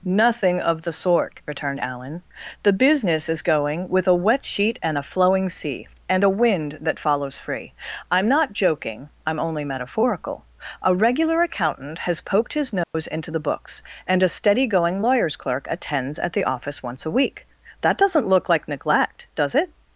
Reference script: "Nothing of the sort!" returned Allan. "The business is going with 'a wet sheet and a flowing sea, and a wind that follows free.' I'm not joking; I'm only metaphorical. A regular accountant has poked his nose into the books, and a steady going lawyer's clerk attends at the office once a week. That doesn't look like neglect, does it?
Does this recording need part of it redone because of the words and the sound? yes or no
yes